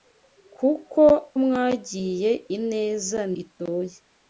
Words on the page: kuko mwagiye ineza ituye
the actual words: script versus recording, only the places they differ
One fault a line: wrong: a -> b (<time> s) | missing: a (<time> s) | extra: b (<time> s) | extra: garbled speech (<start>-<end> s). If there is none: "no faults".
no faults